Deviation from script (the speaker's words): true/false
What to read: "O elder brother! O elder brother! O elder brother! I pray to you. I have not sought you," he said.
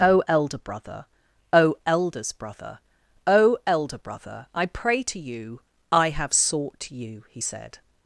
true